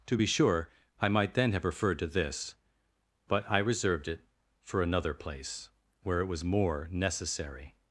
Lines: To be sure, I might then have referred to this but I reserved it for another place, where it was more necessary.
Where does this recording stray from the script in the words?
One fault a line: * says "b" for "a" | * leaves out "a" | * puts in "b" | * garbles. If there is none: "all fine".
all fine